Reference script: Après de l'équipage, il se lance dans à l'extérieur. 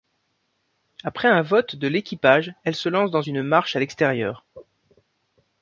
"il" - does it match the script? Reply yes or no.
no